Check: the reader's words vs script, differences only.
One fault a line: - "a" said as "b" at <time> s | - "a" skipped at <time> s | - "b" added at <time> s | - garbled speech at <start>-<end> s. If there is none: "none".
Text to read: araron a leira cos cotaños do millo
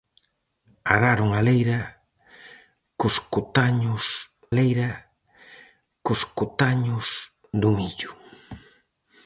- "leira cos cotaños" added at 4.6 s